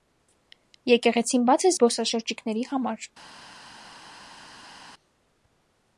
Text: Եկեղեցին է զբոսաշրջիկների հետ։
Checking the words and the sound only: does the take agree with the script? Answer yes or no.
no